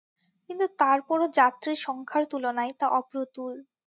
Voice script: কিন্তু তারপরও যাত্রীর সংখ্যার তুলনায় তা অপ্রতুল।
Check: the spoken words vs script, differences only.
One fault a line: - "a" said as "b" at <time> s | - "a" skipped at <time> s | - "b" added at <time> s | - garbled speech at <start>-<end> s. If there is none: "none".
none